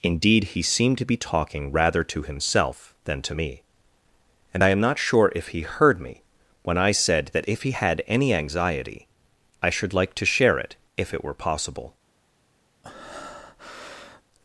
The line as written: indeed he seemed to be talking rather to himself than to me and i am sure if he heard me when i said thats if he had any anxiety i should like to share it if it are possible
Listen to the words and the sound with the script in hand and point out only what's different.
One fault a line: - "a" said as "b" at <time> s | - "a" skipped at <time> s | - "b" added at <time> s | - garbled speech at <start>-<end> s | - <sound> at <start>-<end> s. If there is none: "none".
- "not" added at 4.8 s
- "thats" said as "that" at 7.3 s
- "are" said as "were" at 11.2 s
- breath at 12.8-14.2 s